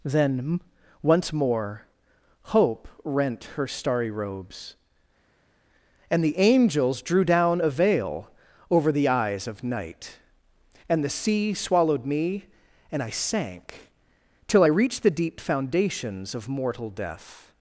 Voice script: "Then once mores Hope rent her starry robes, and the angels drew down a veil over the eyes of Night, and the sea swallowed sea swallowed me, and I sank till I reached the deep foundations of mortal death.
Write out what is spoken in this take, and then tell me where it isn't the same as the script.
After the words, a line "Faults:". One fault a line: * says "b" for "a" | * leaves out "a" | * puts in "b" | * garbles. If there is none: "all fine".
"Then once more Hope rent her starry robes, and the angels drew down a veil over the eyes of Night, and the sea swallowed me, and I sank till I reached the deep foundations of mortal death.
Faults:
* says "more" for "mores"
* leaves out "sea swallowed"